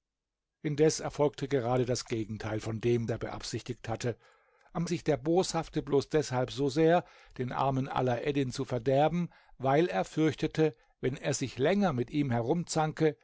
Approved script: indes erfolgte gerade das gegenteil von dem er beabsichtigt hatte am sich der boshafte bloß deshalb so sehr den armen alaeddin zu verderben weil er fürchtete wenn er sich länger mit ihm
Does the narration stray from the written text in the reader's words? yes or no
no